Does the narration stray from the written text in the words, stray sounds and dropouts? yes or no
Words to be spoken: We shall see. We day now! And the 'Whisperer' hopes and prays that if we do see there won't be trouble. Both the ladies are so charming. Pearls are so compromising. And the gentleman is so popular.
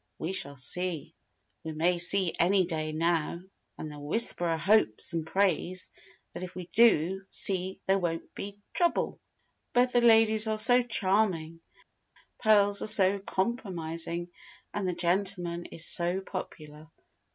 yes